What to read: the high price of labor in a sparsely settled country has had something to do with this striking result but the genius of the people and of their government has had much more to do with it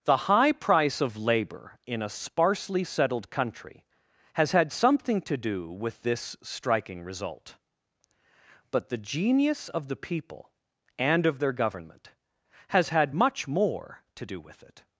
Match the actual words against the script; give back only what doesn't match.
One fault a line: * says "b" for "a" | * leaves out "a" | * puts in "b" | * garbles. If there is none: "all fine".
all fine